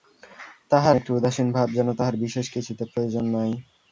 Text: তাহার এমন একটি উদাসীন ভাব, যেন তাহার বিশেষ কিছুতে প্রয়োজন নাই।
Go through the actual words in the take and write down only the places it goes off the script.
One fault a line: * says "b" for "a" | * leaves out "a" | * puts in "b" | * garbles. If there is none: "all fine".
* leaves out "এমন"